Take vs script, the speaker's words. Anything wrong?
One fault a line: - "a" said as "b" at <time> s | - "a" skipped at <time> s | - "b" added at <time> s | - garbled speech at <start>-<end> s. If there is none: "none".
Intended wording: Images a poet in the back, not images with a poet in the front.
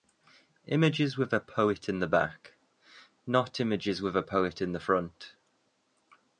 - "with" added at 1.1 s